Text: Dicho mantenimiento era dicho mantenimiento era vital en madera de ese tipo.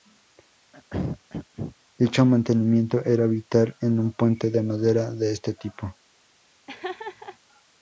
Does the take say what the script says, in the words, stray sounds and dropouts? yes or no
no